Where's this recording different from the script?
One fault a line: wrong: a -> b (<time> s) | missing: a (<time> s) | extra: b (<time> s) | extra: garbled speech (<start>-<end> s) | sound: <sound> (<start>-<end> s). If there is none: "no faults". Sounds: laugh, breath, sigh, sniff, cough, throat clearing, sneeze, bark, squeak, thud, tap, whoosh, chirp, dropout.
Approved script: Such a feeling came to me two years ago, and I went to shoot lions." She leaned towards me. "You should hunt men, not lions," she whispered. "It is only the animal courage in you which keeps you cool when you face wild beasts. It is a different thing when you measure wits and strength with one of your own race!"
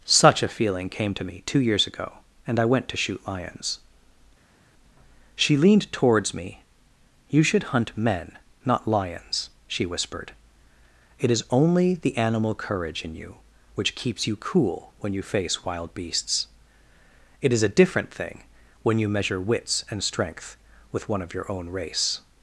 no faults